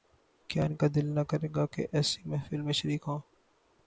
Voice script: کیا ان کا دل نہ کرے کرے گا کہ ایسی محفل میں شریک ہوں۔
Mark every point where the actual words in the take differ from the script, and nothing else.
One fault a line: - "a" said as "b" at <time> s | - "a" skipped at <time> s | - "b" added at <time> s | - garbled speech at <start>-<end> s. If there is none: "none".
- "کرے" skipped at 1.5 s